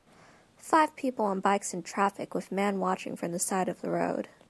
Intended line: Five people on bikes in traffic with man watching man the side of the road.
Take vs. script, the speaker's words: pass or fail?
fail